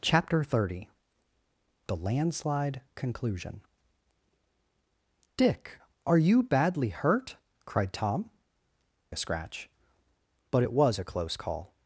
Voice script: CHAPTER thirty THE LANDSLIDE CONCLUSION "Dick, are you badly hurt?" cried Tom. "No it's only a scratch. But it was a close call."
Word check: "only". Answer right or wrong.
wrong